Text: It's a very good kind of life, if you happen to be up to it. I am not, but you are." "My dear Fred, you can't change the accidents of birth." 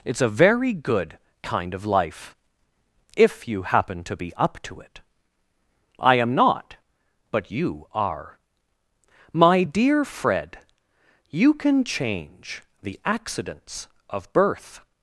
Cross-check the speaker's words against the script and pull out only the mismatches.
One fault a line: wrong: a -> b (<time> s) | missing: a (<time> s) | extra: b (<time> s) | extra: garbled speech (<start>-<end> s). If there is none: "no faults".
wrong: can't -> can (11.5 s)